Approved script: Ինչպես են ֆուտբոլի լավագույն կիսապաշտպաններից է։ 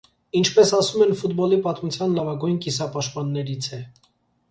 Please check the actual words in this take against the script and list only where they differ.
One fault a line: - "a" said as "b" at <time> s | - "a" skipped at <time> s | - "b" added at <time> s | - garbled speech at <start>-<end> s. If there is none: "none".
- "ասում" added at 0.8 s
- "պատմության" added at 1.7 s